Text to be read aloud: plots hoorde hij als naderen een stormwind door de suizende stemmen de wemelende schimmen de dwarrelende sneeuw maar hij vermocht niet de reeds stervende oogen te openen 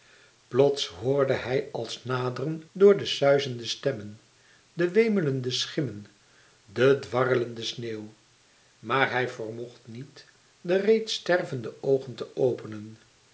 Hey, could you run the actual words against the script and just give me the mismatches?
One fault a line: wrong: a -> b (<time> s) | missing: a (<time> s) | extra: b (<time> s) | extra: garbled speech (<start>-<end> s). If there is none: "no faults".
missing: een stormwind (2.6 s)